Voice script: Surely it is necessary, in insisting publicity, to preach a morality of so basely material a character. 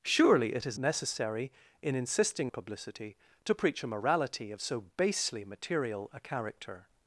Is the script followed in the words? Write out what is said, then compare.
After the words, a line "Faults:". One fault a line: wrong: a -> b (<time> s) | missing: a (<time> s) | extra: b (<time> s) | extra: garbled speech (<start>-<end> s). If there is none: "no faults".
Surely it is necessary, in insisting publicity, to preach a morality of so basely material a character.
Faults:
no faults